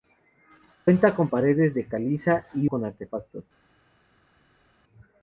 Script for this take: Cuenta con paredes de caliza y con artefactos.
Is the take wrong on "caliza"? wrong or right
right